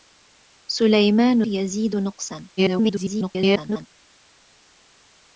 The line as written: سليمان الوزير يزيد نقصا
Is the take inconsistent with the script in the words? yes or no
yes